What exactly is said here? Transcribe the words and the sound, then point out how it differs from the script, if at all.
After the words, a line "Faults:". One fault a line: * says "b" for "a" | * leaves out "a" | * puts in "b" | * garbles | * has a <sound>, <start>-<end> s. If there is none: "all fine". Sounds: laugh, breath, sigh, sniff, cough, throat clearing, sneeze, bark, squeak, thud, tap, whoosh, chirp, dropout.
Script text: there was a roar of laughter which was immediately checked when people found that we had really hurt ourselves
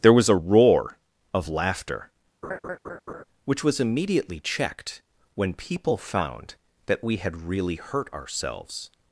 there was a roar of laughter which was immediately checked when people found that we had really hurt ourselves
Faults:
* has a laugh, 2.4-3.2 s